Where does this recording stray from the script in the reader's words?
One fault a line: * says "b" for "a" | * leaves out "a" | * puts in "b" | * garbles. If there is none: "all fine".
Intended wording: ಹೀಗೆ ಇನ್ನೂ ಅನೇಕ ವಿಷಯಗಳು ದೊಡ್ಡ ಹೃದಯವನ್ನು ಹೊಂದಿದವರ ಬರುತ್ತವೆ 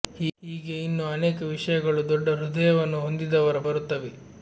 all fine